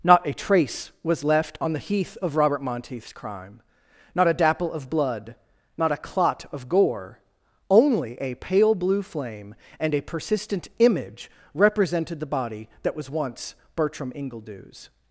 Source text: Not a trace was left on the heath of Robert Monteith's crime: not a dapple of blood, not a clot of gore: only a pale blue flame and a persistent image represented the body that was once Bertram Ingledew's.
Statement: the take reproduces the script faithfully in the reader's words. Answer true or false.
true